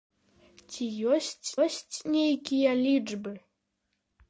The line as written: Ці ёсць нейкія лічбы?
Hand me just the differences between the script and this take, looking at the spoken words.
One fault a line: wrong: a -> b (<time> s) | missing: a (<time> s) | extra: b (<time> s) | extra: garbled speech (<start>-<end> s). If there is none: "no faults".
extra: ёсць (1.6 s)